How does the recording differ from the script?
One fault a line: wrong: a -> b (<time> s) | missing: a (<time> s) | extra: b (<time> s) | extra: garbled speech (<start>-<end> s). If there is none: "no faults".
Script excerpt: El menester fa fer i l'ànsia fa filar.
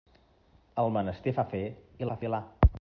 missing: l'ànsia (2.1 s)